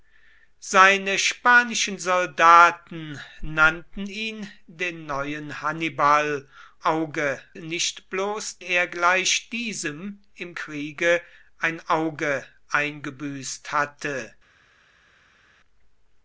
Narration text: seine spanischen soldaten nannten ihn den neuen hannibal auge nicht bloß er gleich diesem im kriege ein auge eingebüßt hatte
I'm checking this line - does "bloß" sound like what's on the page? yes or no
yes